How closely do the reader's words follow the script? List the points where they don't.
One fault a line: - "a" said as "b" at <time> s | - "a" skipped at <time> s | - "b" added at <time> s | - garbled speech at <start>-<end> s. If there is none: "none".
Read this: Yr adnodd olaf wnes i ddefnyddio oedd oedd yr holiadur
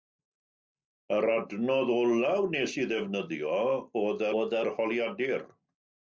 none